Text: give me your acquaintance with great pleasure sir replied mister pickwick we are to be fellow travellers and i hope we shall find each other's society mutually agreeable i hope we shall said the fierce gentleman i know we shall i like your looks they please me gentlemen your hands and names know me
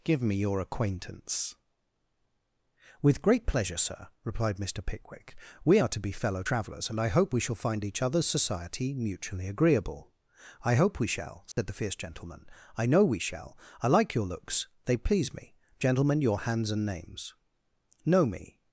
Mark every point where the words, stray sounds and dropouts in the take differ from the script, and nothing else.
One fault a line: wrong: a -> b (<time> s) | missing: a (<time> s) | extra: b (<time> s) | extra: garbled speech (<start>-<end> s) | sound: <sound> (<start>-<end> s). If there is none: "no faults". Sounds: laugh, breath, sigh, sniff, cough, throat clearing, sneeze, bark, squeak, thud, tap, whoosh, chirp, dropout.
sound: dropout (11.5-11.6 s)